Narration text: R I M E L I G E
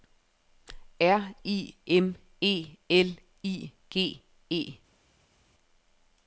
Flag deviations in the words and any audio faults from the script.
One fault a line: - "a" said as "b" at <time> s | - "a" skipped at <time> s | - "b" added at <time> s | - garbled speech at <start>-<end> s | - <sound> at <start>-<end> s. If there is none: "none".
none